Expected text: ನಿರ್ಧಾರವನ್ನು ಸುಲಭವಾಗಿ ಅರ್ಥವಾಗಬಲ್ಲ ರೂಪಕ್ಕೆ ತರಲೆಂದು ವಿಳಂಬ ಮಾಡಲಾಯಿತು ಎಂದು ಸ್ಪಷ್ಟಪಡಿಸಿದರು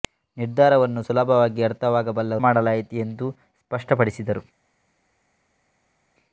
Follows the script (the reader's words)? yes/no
no